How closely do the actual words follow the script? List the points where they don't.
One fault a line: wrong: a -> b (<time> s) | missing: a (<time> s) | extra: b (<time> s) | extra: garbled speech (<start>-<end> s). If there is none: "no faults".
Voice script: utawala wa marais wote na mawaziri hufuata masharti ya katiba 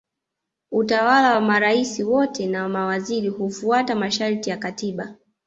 no faults